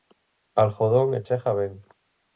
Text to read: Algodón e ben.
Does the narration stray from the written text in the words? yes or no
yes